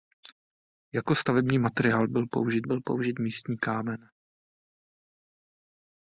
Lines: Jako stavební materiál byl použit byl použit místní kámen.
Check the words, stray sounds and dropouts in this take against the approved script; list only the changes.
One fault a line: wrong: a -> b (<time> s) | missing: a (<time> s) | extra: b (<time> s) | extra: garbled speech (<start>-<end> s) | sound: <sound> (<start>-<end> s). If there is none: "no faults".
no faults